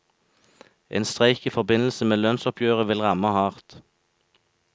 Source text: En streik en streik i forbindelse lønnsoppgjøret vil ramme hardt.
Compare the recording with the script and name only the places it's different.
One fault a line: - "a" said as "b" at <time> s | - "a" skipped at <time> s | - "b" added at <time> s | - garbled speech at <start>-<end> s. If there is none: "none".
- "en streik" skipped at 1.4 s
- "med" added at 2.0 s